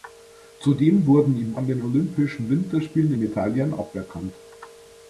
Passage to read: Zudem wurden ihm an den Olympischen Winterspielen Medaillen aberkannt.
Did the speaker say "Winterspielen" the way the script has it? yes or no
yes